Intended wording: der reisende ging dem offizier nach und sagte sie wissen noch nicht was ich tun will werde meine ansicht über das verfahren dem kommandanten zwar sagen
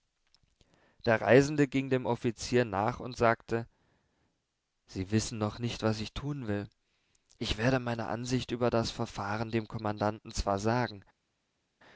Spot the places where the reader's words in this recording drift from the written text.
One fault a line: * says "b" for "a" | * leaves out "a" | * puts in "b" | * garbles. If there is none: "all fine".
* puts in "ich"